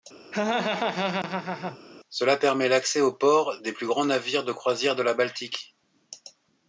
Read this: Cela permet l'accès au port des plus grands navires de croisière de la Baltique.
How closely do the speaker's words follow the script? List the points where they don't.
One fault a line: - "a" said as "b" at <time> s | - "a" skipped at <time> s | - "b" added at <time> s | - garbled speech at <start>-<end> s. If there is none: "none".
none